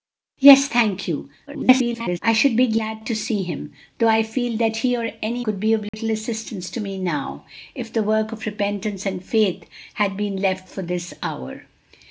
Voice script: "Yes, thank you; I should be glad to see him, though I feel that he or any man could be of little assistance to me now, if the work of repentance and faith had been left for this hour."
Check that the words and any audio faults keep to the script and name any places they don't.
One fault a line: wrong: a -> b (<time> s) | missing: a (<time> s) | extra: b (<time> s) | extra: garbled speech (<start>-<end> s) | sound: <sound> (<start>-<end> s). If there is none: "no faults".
extra: garbled speech (1.5-2.2 s)
missing: man (5.4 s)
sound: dropout (5.9-5.9 s)